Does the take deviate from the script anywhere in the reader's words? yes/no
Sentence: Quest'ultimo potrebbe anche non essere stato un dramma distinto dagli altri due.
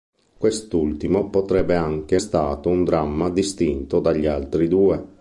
yes